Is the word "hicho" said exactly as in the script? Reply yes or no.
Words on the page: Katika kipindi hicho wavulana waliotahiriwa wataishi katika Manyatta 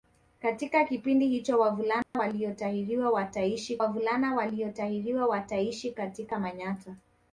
yes